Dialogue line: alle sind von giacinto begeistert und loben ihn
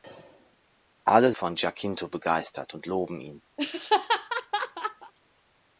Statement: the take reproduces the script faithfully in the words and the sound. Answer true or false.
false